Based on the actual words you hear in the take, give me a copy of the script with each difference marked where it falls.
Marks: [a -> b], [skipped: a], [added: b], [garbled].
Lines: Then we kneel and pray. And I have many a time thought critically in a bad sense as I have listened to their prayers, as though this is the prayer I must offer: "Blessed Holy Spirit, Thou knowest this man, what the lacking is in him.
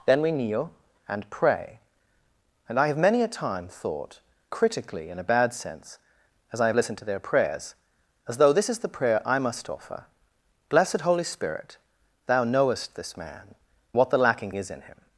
Then we kneel and pray. And I have many a time thought critically in a bad sense as I have listened to their prayers, as though this is the prayer I must offer: "Blessed Holy Spirit, Thou knowest this man, what the lacking is in him.